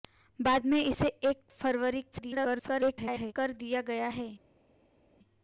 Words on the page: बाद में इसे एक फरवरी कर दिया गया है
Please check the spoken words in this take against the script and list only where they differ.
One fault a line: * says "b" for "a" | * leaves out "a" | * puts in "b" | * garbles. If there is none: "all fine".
* garbles